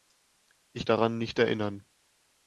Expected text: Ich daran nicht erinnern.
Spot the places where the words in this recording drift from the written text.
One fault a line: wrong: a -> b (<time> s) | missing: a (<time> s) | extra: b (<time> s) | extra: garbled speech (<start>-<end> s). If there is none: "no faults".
no faults